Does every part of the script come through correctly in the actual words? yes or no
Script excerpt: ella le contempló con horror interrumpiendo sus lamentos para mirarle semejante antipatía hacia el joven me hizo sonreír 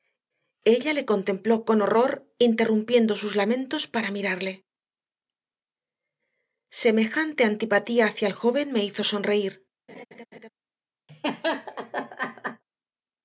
yes